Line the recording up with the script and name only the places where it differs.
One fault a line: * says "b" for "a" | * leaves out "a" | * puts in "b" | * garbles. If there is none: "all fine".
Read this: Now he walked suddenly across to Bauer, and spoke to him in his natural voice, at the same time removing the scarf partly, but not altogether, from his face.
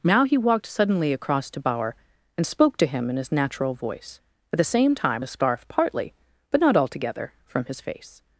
* leaves out "removing"